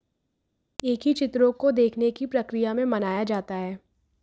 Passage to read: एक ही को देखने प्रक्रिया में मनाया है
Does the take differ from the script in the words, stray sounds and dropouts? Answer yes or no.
yes